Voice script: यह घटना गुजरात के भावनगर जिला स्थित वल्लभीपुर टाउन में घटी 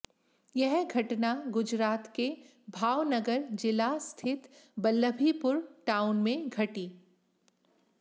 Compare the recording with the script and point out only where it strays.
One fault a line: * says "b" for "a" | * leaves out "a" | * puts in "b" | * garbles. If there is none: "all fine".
all fine